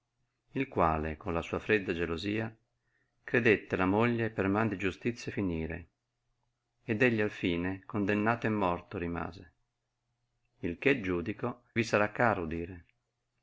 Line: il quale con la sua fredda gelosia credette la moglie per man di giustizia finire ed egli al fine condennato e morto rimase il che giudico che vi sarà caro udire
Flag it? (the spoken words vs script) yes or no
yes